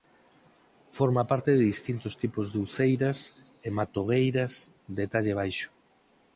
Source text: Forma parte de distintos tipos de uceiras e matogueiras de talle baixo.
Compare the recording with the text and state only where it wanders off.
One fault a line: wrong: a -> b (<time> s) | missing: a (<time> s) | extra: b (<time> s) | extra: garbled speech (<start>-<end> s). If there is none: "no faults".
no faults